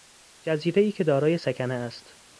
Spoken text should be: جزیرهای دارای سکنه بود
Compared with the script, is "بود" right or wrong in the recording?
wrong